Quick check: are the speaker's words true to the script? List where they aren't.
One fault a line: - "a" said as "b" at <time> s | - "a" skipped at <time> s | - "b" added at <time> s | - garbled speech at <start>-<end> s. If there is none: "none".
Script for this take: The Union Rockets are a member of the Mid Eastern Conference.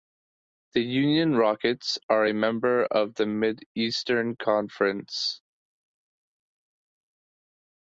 none